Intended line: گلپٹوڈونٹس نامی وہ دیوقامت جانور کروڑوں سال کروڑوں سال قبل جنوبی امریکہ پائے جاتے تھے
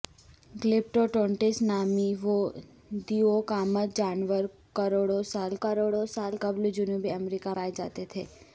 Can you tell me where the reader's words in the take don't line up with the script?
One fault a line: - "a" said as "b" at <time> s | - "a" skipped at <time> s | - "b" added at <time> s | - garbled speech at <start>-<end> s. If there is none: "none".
none